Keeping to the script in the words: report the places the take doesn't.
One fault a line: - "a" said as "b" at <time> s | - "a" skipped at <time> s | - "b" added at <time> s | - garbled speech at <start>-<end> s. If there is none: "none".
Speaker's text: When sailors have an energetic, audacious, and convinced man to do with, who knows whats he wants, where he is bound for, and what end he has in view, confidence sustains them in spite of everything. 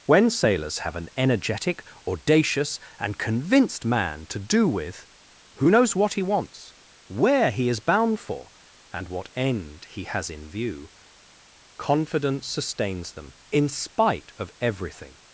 - "whats" said as "what" at 6.0 s